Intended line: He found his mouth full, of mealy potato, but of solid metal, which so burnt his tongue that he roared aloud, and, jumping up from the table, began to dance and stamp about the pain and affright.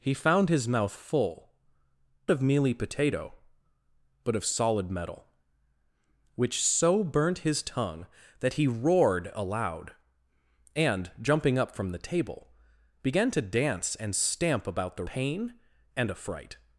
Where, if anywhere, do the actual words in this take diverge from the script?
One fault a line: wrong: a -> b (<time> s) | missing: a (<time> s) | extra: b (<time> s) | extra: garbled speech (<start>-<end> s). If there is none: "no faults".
no faults